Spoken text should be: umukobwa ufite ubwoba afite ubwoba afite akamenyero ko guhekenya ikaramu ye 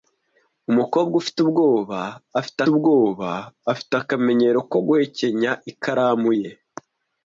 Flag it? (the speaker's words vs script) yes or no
no